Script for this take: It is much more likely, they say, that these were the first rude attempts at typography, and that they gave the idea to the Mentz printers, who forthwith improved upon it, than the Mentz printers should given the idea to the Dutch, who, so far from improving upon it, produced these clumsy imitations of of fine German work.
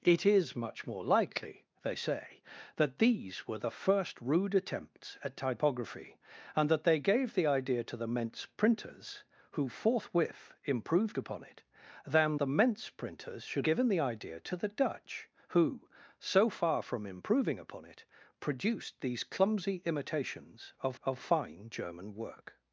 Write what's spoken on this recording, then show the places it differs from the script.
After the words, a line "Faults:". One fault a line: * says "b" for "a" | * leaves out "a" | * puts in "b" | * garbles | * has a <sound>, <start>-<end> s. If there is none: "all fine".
It is much more likely, they say, that these were the first rude attempts at typography, and that they gave the idea to the Mentz printers, who forthwith improved upon it, than the Mentz printers should given the idea to the Dutch, who, so far from improving upon it, produced these clumsy imitations of of fine German work.
Faults:
all fine